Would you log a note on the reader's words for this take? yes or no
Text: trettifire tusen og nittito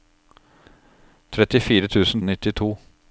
no